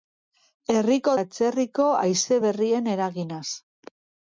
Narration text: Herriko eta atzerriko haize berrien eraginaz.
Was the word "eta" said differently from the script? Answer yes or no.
yes